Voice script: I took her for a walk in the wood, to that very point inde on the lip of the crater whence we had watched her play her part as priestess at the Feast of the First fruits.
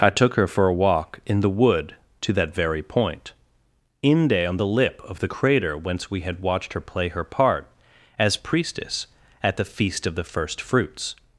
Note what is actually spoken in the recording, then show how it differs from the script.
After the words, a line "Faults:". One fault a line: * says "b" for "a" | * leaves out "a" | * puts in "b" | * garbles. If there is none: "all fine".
I took her for a walk in the wood, to that very point inde on the lip of the crater whence we had watched her play her part as priestess at the Feast of the First fruits.
Faults:
all fine